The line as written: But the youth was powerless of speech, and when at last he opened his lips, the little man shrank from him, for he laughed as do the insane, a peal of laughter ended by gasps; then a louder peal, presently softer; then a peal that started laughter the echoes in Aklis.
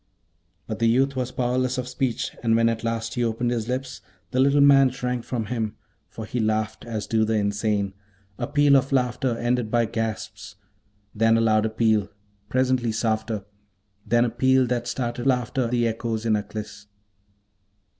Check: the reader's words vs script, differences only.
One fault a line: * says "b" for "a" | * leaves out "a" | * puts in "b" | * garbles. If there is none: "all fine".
all fine